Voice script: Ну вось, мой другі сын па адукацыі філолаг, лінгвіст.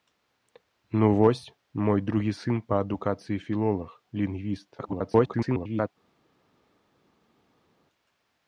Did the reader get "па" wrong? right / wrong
right